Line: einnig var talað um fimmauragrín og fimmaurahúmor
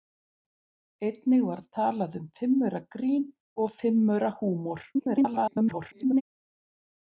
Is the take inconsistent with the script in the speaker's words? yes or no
yes